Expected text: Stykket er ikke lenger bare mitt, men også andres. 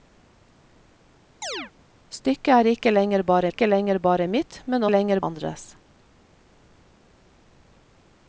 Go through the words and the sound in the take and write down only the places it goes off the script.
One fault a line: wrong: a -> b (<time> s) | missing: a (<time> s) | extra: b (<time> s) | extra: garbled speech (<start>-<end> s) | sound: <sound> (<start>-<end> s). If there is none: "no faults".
sound: chirp (1.4-1.7 s)
extra: ikke lenger bare (3.5 s)
wrong: også -> lenger (4.9 s)